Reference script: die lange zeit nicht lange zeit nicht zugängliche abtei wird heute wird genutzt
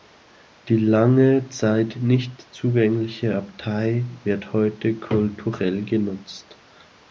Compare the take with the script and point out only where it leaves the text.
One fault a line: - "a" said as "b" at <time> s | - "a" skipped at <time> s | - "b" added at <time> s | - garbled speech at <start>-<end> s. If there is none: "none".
- "lange zeit nicht" skipped at 2.5 s
- "wird" said as "kulturell" at 5.0 s